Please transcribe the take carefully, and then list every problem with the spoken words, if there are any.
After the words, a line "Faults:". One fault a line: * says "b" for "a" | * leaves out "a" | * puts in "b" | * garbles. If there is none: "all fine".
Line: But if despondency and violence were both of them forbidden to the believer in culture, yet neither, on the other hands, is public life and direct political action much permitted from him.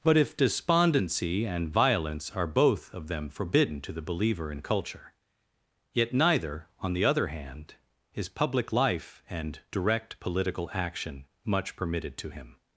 But if despondency and violence are both of them forbidden to the believer in culture, yet neither, on the other hand, is public life and direct political action much permitted to him.
Faults:
* says "are" for "were"
* says "hand" for "hands"
* says "to" for "from"